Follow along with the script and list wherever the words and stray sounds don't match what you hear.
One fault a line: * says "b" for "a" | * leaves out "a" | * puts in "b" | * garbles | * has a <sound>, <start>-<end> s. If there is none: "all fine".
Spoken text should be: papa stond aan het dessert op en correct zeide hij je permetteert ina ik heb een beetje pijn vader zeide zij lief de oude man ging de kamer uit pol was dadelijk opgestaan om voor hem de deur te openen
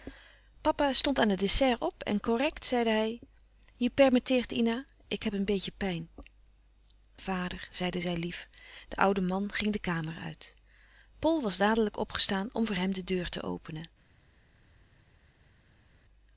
all fine